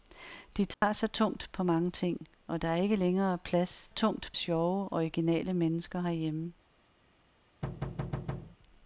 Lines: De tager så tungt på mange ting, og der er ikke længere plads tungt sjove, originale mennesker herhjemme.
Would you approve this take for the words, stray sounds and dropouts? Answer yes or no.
no